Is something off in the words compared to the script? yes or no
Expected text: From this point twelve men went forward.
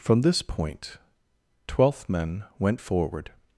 yes